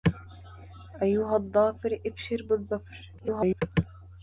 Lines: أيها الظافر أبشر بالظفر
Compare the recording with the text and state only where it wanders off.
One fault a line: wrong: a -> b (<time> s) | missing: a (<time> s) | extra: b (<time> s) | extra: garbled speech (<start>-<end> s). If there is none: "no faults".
extra: garbled speech (3.2-3.6 s)